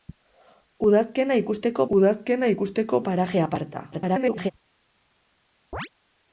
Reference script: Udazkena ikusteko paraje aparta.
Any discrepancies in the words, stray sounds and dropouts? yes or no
yes